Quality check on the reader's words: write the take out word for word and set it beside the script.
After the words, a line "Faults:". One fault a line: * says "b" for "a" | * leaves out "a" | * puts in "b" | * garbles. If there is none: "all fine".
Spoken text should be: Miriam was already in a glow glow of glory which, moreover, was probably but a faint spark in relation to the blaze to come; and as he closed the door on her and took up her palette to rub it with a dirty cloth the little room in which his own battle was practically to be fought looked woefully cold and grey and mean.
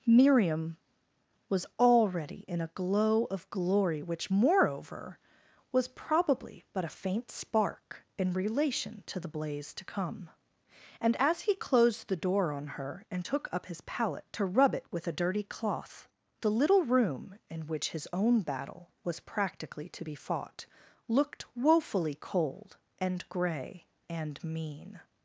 Miriam was already in a glow of glory which, moreover, was probably but a faint spark in relation to the blaze to come; and as he closed the door on her and took up his palette to rub it with a dirty cloth the little room in which his own battle was practically to be fought looked woefully cold and grey and mean.
Faults:
* leaves out "glow"
* says "his" for "her"